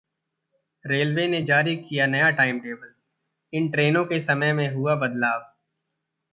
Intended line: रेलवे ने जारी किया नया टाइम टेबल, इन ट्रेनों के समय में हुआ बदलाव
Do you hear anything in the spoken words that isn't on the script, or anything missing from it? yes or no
no